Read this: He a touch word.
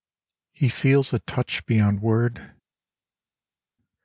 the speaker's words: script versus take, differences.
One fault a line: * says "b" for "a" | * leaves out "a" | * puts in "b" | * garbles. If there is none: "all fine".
* puts in "feels"
* puts in "beyond"